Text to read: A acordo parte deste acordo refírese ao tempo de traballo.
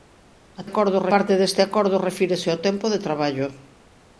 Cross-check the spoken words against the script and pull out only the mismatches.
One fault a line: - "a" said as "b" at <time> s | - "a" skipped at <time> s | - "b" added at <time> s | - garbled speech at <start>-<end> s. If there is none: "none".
none